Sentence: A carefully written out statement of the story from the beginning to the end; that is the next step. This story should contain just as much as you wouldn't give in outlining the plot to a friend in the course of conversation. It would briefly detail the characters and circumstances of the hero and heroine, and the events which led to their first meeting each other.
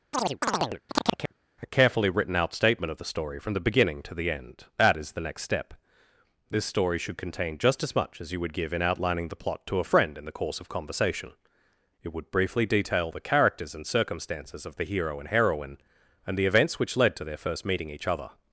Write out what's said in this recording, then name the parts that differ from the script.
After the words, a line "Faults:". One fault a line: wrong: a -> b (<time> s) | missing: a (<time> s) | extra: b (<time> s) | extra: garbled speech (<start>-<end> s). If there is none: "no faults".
A carefully written out statement of the story from the beginning to the end; that is the next step. This story should contain just as much as you would give in outlining the plot to a friend in the course of conversation. It would briefly detail the characters and circumstances of the hero and heroine, and the events which led to their first meeting each other.
Faults:
wrong: wouldn't -> would (8.4 s)